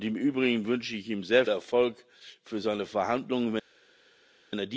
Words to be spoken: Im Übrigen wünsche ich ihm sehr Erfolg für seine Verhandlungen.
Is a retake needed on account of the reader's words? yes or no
no